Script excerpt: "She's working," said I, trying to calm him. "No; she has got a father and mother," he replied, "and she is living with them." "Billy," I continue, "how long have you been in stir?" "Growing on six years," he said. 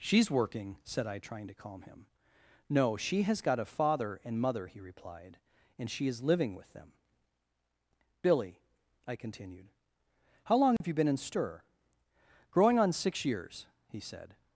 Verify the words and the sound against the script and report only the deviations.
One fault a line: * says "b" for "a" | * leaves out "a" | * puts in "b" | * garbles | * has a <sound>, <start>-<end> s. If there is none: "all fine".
* says "continued" for "continue"
* has a dropout, 10.8-10.8 s